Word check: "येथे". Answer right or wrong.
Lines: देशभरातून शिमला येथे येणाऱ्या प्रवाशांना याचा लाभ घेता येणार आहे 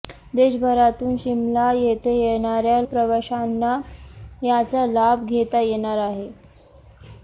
right